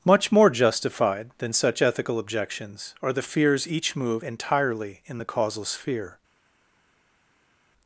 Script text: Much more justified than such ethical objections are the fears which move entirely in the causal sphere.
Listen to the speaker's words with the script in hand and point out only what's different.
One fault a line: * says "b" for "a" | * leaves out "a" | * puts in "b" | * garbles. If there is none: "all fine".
* says "each" for "which"